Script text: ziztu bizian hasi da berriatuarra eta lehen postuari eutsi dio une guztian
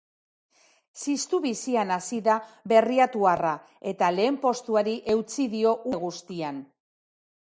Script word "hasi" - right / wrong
right